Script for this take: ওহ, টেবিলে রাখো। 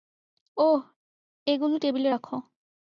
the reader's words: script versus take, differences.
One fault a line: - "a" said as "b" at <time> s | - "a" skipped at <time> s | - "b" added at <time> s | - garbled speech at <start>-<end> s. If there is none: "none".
- "এগুলো" added at 1.5 s